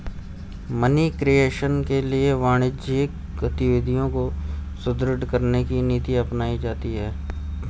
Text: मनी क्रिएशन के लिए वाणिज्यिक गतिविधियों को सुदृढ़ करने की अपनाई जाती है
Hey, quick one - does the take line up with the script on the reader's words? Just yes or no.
no